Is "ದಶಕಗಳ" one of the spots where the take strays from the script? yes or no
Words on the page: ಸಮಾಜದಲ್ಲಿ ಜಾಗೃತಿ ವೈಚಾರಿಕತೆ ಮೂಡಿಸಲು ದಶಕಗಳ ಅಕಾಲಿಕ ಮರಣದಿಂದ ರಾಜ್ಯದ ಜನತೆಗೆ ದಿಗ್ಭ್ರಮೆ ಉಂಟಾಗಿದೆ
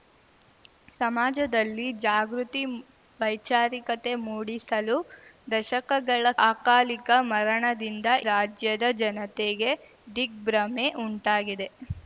no